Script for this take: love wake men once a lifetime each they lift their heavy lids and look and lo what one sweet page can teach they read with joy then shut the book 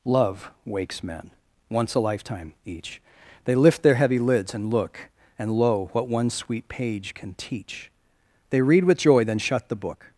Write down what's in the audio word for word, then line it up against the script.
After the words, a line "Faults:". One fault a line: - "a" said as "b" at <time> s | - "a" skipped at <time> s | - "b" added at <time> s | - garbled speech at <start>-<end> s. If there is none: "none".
love wakes men once a lifetime each they lift their heavy lids and look and lo what one sweet page can teach they read with joy then shut the book
Faults:
- "wake" said as "wakes" at 0.7 s